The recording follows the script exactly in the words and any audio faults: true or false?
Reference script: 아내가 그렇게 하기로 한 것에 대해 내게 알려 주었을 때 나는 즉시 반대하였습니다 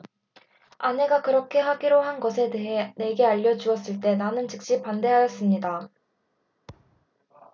false